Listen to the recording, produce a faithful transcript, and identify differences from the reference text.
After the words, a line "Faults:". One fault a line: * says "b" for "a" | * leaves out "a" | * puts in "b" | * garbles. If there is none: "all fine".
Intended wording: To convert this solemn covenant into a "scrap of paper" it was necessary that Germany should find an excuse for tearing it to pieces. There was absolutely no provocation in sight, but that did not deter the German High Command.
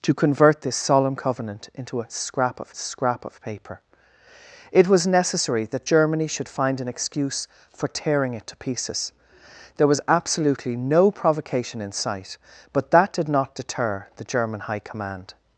To convert this solemn covenant into a "scrap of scrap of paper" it was necessary that Germany should find an excuse for tearing it to pieces. There was absolutely no provocation in sight, but that did not deter the German High Command.
Faults:
* puts in "scrap of"